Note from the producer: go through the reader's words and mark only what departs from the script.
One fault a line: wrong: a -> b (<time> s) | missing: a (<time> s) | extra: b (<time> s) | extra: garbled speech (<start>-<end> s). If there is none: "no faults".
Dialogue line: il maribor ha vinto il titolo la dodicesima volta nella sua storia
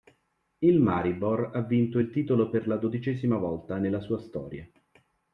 extra: per (2.5 s)